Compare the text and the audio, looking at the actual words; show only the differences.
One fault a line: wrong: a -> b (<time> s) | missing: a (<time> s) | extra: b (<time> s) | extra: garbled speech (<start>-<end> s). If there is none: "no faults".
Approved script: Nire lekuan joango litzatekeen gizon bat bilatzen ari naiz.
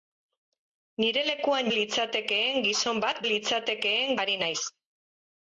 missing: joango (1.7 s)
wrong: bilatzen -> litzatekeen (3.3 s)